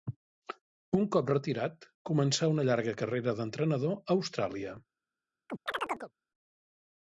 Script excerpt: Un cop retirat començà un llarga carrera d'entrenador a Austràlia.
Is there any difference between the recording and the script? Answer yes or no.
yes